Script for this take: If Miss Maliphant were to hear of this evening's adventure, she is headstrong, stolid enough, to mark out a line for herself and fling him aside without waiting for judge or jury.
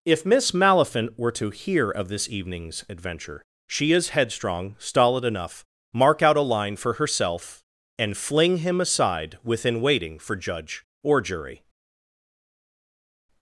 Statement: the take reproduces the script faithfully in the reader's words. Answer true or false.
false